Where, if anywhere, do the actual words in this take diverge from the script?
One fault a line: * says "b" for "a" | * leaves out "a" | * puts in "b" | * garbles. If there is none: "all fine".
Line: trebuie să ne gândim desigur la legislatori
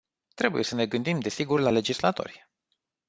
all fine